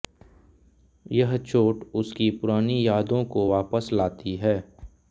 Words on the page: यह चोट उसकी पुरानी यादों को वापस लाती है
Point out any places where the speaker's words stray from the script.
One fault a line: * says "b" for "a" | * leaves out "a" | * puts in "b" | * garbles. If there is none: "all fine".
all fine